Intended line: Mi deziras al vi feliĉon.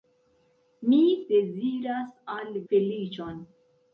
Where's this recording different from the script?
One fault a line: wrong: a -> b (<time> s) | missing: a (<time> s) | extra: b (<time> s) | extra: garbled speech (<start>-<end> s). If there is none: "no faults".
missing: vi (2.5 s)